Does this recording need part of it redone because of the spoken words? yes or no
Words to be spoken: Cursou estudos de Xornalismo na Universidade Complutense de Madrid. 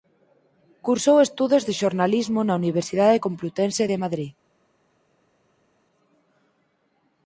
no